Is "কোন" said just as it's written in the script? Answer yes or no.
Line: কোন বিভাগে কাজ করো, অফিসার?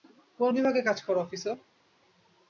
yes